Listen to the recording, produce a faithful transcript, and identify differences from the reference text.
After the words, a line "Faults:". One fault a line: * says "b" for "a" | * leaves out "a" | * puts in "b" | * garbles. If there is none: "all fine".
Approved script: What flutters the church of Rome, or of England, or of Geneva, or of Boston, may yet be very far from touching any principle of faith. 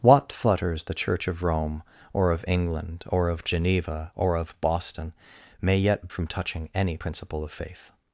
What flutters the church of Rome, or of England, or of Geneva, or of Boston, may yet from touching any principle of faith.
Faults:
* leaves out "be very far"